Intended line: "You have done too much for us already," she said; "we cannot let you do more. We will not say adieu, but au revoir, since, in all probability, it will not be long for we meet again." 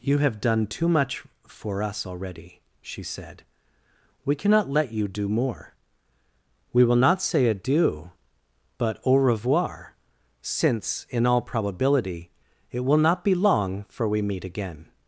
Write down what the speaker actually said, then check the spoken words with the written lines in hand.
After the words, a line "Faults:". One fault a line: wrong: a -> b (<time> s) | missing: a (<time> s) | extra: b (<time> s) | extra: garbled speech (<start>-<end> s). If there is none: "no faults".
"You have done too much for us already," she said; "we cannot let you do more. We will not say adieu, but au revoir, since, in all probability, it will not be long for we meet again."
Faults:
no faults